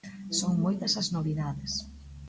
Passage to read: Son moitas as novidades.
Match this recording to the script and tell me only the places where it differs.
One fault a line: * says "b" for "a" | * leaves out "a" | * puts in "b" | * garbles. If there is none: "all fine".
all fine